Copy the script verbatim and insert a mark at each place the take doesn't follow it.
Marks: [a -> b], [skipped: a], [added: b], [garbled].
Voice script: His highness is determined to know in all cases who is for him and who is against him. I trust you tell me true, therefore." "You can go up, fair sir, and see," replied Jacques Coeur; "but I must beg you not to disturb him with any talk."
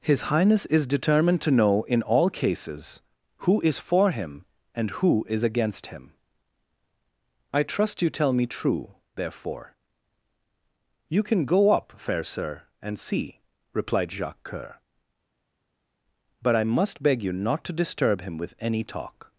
His highness is determined to know in all cases who is for him and who is against him. I trust you tell me true, therefore." "You can go up, fair sir, and see," replied Jacques Coeur; "but I must beg you not to disturb him with any talk."